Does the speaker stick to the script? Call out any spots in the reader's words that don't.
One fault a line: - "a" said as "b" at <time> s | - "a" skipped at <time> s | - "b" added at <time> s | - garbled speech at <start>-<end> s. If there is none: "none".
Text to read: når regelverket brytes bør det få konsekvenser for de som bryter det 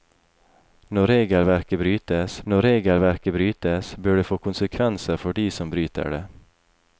- "når regelverket brytes" added at 2.5 s